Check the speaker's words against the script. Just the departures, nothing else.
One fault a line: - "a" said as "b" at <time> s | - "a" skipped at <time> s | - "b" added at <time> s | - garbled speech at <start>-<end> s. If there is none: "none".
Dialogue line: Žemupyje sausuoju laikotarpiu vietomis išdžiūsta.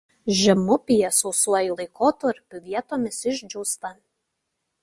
none